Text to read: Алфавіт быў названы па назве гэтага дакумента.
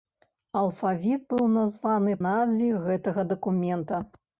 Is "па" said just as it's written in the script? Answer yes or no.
no